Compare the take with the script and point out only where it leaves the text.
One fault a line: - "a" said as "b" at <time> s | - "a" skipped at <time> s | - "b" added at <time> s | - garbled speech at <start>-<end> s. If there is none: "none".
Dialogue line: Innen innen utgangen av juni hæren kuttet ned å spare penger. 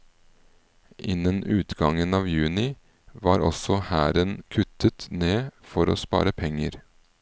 - "innen" skipped at 1.4 s
- "var også" added at 3.2 s
- "for" added at 5.7 s